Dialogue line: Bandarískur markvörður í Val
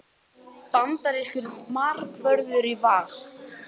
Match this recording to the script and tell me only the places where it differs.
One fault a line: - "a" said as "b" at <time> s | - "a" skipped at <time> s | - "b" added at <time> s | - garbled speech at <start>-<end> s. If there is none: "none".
none